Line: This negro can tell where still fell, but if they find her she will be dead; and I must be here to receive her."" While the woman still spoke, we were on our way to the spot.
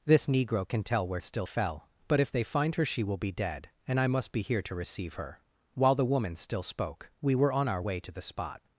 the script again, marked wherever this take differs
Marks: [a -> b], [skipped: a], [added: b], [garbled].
This negro can tell where still fell, but if they find her she will be dead; and I must be here to receive her."" While the woman still spoke, we were on our way to the spot.